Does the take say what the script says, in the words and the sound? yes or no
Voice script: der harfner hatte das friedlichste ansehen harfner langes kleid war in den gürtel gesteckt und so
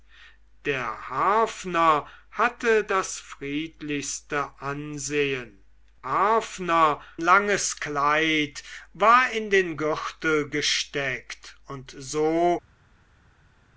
yes